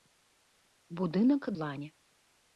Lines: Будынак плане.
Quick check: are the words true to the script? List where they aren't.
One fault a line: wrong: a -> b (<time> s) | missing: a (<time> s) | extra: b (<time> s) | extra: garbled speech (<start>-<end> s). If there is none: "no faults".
no faults